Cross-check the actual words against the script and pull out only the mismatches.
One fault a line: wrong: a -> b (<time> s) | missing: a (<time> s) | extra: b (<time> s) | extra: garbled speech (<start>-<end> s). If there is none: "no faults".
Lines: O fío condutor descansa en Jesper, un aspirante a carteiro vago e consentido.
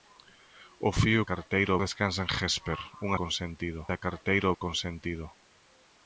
wrong: condutor -> carteiro (1.3 s)
wrong: aspirante -> consentido (3.2 s)
missing: vago (4.5 s)